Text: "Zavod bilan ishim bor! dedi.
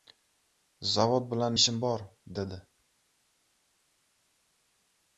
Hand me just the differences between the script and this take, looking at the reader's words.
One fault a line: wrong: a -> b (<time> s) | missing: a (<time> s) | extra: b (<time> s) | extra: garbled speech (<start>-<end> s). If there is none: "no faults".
no faults